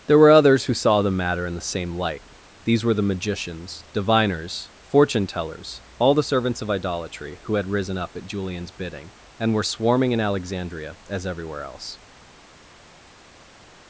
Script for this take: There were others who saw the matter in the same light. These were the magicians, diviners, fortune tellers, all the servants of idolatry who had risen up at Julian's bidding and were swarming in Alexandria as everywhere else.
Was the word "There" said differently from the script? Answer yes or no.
no